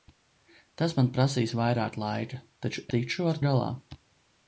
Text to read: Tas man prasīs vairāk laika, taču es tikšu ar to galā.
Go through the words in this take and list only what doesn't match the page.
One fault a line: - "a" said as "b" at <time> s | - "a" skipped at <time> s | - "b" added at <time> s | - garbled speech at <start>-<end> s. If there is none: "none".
- "es" skipped at 2.9 s
- "to" skipped at 3.4 s